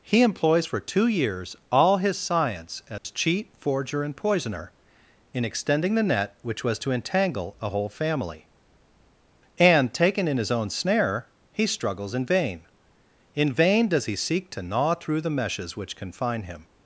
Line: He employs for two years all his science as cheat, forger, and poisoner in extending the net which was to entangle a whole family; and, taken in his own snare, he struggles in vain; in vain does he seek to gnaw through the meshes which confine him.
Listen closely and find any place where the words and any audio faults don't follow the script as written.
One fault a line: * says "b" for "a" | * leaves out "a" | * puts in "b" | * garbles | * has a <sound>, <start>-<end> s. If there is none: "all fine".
* has a dropout, 3.0-3.0 s